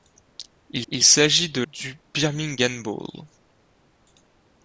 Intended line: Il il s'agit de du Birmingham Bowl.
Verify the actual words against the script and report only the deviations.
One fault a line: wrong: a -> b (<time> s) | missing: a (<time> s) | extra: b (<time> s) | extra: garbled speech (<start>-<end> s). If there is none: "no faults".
no faults